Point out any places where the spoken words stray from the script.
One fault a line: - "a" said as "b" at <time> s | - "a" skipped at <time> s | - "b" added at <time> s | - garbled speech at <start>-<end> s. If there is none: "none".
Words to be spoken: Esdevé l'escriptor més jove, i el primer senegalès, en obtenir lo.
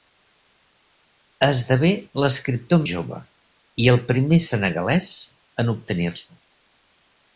- "més" skipped at 2.8 s